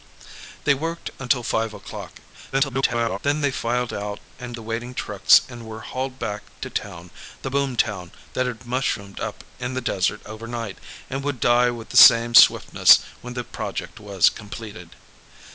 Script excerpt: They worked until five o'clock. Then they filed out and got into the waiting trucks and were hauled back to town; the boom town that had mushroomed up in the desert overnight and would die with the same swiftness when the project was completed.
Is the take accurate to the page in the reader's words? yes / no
no